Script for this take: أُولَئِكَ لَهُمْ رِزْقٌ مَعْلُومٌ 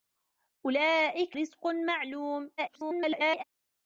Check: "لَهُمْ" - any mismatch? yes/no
yes